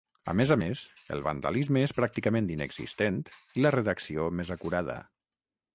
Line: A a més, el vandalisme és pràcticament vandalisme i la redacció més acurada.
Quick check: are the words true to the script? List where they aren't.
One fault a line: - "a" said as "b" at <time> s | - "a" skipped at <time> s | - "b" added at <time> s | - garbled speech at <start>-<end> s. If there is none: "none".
- "més" added at 0.4 s
- "vandalisme" said as "inexistent" at 2.6 s